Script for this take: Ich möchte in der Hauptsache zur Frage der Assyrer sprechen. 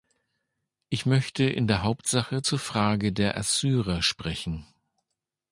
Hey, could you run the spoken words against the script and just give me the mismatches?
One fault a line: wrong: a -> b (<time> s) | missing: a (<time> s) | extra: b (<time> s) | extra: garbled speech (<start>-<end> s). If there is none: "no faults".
no faults